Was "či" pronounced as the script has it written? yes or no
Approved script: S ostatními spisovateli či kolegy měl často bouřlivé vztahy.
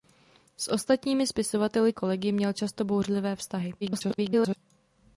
no